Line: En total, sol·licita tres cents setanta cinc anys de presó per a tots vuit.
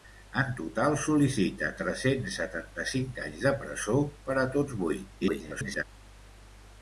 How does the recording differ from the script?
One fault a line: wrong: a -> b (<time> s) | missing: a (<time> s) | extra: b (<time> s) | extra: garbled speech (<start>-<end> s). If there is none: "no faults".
extra: garbled speech (5.2-5.8 s)